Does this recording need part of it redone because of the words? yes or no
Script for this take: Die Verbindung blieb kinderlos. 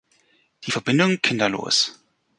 yes